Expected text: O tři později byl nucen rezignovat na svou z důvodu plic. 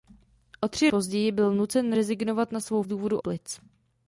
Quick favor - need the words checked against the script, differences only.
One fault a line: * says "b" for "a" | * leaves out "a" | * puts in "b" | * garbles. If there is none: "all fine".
all fine